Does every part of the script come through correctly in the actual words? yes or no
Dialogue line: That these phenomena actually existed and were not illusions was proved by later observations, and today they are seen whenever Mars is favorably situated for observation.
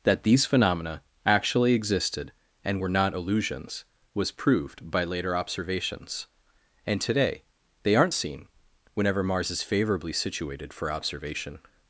no